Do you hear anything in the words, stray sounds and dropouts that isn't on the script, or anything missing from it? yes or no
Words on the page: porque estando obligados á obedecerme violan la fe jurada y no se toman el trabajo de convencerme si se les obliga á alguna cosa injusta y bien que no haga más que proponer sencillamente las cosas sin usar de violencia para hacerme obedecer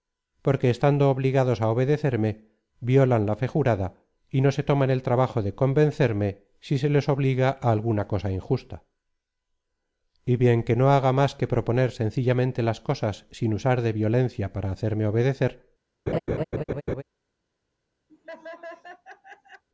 yes